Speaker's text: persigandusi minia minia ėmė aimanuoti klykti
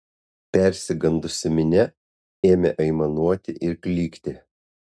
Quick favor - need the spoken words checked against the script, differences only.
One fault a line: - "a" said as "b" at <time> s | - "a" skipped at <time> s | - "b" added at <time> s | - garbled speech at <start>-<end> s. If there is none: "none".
- "minia" skipped at 1.9 s
- "ir" added at 3.7 s